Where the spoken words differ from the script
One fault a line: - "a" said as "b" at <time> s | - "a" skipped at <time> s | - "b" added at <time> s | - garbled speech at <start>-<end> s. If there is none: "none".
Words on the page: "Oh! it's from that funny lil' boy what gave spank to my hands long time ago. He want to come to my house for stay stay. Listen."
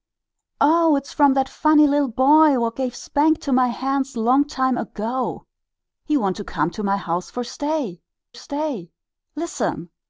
none